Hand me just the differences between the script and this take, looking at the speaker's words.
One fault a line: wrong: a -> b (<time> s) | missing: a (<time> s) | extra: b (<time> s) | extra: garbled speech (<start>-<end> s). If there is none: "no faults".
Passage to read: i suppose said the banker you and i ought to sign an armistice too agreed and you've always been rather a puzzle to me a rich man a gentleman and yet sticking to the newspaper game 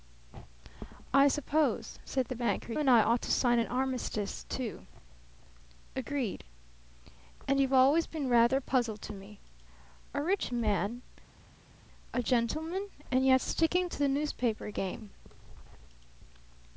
missing: you (2.7 s)